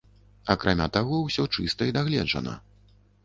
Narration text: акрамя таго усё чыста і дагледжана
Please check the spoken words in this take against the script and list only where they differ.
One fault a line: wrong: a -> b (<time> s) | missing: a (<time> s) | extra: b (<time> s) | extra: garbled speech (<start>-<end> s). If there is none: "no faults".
no faults